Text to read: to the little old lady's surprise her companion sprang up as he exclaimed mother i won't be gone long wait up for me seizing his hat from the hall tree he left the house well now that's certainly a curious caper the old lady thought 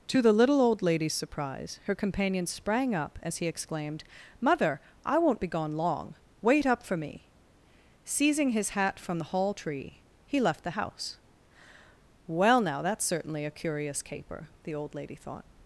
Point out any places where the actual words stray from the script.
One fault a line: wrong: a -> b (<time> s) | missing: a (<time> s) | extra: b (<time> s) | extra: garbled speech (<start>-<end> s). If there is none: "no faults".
no faults